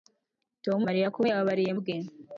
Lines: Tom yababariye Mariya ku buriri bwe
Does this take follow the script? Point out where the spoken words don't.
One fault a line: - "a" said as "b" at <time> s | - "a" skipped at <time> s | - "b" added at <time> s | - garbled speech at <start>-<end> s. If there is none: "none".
- "yababariye" skipped at 0.8 s
- "buriri" said as "yababariye" at 1.3 s